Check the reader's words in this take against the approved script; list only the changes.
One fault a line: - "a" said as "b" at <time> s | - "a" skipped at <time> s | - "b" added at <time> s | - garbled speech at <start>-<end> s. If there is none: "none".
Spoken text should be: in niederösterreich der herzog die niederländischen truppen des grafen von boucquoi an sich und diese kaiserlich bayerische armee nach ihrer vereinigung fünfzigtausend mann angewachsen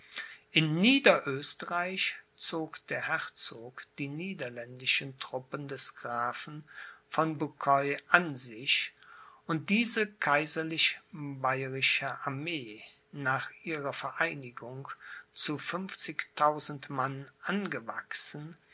- "zog" added at 2.4 s
- "zu" added at 15.3 s